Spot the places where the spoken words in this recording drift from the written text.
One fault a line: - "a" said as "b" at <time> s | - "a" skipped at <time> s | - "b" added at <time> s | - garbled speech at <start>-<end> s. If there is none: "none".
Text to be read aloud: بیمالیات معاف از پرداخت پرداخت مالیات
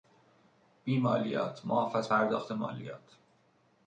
- "پرداخت" skipped at 2.5 s